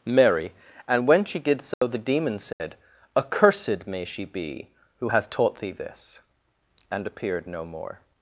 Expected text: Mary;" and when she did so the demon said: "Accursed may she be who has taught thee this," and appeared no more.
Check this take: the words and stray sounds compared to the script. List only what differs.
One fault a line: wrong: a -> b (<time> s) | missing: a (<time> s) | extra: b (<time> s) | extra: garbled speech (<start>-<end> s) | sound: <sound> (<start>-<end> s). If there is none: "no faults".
sound: dropout (1.7-1.8 s)
sound: dropout (2.5-2.6 s)